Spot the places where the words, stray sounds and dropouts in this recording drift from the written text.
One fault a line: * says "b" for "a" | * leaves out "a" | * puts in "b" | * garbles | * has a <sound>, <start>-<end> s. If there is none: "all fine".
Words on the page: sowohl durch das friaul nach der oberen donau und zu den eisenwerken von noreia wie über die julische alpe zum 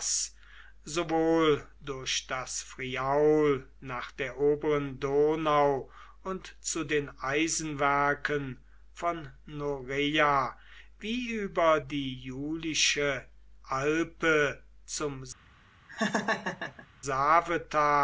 * has a laugh, 15.9-16.9 s